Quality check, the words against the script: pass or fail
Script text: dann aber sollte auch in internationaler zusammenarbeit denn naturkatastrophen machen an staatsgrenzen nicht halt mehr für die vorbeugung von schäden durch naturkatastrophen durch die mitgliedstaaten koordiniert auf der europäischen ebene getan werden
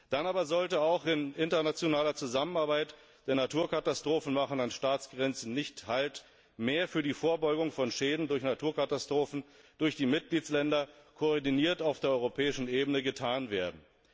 pass